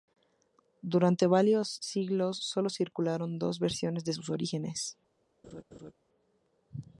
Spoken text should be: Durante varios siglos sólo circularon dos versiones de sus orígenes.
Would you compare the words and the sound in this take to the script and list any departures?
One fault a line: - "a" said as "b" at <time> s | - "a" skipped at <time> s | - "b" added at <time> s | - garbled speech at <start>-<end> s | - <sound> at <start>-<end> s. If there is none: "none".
- laugh at 5.4-5.9 s